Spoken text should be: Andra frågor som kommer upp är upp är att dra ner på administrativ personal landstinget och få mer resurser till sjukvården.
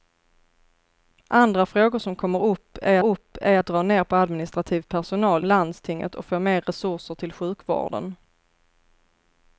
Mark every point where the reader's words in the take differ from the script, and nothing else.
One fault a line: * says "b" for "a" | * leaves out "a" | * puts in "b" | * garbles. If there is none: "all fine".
all fine